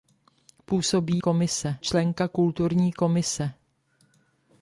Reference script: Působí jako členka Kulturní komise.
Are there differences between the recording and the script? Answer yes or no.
yes